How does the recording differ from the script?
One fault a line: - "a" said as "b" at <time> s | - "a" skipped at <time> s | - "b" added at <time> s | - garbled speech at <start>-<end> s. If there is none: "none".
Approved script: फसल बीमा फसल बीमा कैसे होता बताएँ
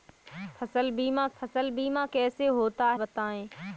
none